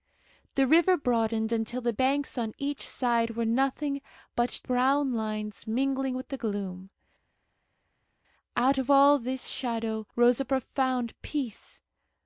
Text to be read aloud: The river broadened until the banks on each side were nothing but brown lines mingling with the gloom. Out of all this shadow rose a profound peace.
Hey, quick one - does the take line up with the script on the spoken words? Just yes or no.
yes